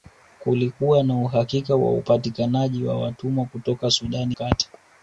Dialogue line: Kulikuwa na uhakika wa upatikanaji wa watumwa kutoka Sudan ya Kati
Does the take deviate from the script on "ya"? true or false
true